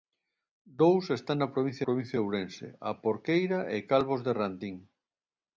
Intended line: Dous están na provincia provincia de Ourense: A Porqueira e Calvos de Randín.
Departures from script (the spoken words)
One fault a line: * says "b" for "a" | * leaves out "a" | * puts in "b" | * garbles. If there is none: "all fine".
all fine